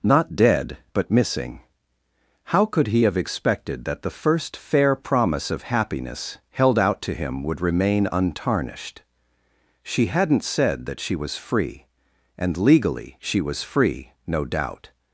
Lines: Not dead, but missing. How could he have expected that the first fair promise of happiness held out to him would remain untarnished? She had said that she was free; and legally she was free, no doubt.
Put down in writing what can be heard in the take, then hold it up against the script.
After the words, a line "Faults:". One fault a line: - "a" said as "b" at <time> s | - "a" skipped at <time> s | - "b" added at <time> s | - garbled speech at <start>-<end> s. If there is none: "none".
Not dead, but missing. How could he have expected that the first fair promise of happiness held out to him would remain untarnished? She hadn't said that she was free; and legally she was free, no doubt.
Faults:
- "had" said as "hadn't" at 10.1 s